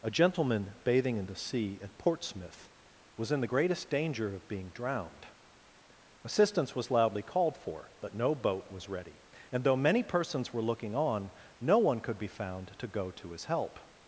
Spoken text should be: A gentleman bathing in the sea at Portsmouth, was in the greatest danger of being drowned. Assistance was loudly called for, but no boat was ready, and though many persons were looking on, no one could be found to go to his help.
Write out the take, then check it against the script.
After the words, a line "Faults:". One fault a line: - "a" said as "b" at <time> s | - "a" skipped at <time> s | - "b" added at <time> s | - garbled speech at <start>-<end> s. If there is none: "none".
A gentleman bathing in the sea at Portsmouth, was in the greatest danger of being drowned. Assistance was loudly called for, but no boat was ready, and though many persons were looking on, no one could be found to go to his help.
Faults:
none